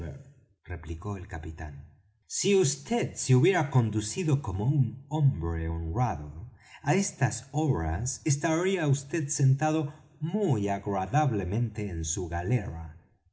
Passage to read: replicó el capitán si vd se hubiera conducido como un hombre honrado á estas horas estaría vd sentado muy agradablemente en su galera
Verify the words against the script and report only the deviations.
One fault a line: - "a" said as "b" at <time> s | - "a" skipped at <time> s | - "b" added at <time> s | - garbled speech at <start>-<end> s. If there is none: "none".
none